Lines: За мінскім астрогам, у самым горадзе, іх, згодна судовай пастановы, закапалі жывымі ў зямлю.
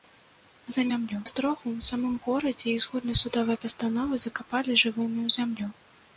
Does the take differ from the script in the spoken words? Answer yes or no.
yes